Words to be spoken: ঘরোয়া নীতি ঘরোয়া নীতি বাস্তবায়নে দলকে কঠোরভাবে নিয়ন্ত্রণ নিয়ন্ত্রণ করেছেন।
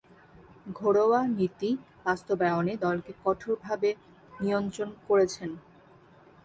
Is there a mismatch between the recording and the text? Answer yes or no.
yes